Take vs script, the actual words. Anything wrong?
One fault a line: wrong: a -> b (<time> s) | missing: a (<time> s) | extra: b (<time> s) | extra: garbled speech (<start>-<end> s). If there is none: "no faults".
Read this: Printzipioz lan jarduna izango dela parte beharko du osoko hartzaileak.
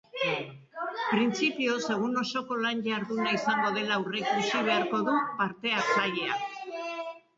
extra: egun osoko (1.9 s)
wrong: parte -> aurreikusi (4.0 s)
wrong: osoko -> parte (5.4 s)